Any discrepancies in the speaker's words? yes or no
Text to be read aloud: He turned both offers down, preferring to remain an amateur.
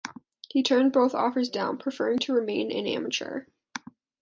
no